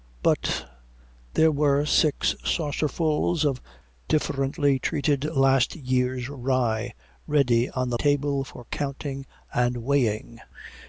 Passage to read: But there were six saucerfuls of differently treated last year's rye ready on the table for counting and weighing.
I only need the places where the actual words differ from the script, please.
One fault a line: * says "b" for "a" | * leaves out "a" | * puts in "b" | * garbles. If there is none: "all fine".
all fine